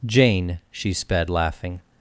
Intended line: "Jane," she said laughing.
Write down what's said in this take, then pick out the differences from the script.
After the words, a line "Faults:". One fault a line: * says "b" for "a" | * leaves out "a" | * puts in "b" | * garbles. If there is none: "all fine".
"Jane," she sped laughing.
Faults:
* says "sped" for "said"